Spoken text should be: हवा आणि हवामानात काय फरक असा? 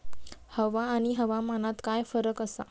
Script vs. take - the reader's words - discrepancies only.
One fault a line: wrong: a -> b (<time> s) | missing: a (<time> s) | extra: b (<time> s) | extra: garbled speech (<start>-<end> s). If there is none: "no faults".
no faults